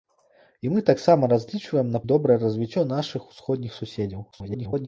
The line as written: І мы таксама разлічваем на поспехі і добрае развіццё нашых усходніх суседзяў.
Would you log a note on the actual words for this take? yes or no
yes